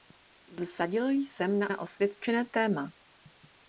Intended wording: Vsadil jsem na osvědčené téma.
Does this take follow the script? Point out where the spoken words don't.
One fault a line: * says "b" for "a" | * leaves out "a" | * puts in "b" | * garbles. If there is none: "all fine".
* puts in "na"